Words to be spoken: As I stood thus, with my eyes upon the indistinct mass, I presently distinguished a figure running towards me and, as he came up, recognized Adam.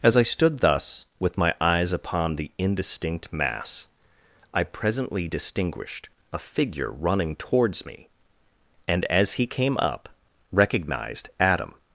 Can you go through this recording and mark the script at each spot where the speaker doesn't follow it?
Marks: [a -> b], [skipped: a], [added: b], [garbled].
As I stood thus, with my eyes upon the indistinct mass, I presently distinguished a figure running towards me and, as he came up, recognized Adam.